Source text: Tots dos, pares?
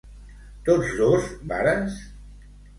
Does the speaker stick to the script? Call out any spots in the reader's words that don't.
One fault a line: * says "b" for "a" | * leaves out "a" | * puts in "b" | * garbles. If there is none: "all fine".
all fine